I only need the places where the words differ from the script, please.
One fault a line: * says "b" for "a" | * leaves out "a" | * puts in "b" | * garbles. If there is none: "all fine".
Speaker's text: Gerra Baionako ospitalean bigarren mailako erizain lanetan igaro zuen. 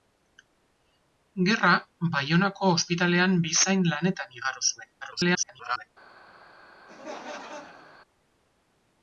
* leaves out "bigarren mailako"
* garbles